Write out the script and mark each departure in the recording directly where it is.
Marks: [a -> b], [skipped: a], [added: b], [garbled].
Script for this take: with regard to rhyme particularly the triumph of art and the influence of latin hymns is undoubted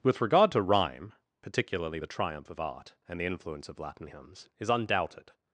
with regard to rhyme particularly the triumph of art and the influence of latin hymns is undoubted